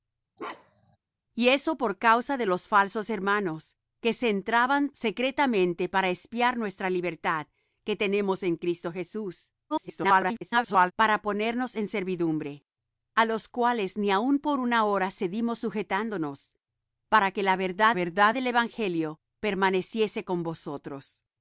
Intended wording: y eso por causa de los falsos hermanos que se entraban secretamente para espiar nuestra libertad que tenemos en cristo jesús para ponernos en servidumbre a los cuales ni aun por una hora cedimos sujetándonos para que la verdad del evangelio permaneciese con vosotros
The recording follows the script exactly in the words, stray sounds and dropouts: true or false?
false